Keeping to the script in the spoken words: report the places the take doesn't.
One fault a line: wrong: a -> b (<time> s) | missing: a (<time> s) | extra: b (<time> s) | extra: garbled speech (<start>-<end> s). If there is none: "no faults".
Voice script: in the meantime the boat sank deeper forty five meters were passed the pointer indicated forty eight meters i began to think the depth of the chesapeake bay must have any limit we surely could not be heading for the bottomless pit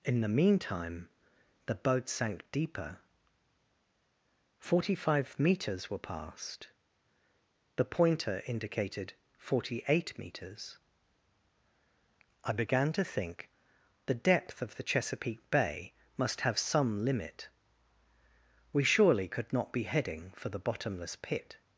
wrong: any -> some (16.6 s)